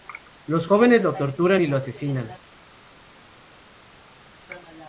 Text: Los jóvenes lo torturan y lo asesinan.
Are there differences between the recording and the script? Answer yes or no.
no